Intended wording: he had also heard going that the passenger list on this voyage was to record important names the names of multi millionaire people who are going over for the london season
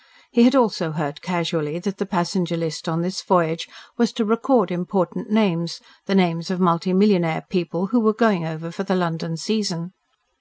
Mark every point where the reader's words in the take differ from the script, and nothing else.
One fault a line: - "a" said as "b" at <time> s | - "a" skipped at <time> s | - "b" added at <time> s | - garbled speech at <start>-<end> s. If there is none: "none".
- "going" said as "casually" at 1.2 s
- "are" said as "were" at 8.0 s